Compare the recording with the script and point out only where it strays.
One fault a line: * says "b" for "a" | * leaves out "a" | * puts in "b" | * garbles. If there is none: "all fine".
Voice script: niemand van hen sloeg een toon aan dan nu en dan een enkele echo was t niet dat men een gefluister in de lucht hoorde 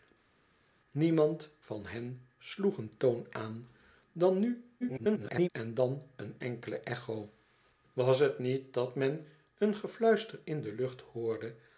* garbles